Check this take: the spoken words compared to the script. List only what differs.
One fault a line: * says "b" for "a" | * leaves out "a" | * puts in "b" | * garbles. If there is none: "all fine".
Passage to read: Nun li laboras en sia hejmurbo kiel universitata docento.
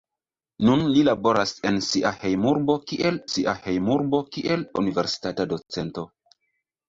* puts in "sia hejmurbo kiel"